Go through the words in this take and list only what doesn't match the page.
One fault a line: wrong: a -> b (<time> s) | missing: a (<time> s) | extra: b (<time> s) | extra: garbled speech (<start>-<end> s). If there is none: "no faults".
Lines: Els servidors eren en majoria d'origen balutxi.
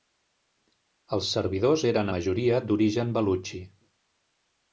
missing: en (2.1 s)